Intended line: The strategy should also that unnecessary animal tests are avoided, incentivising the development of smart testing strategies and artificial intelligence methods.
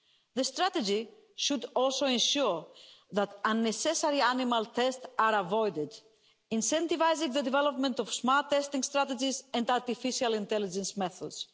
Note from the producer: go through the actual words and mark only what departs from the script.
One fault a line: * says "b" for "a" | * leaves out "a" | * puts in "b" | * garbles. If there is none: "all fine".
* puts in "ensure"